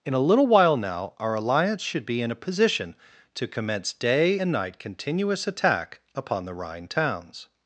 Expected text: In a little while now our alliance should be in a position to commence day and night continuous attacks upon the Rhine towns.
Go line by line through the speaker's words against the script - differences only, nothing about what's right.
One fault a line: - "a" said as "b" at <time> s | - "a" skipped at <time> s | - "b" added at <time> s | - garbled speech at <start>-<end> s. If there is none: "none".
- "attacks" said as "attack" at 5.5 s